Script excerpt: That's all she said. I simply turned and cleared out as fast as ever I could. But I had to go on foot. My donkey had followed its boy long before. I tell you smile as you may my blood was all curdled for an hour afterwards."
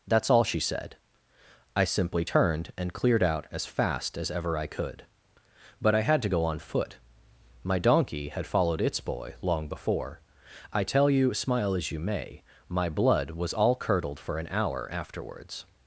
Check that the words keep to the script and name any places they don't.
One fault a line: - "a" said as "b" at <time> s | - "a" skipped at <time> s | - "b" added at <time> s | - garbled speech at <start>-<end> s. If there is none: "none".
none